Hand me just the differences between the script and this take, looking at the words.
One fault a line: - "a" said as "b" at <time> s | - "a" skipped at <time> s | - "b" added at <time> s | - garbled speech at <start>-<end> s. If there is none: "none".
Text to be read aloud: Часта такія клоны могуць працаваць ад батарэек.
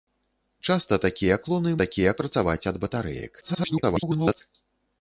- "могуць" said as "такія" at 1.8 s
- garbled speech at 3.4-4.4 s